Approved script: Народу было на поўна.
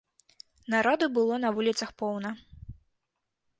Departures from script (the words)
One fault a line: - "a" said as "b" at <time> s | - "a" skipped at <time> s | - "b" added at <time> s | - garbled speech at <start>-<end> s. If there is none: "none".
- "вуліцах" added at 1.6 s